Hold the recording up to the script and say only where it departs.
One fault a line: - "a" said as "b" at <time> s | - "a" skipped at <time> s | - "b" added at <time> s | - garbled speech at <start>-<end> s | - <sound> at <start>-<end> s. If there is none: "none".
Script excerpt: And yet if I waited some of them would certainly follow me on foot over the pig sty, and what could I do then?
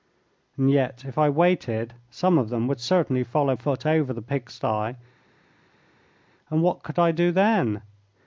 - "me on" skipped at 3.5 s